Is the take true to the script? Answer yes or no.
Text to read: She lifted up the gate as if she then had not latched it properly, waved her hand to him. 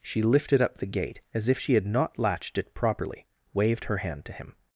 no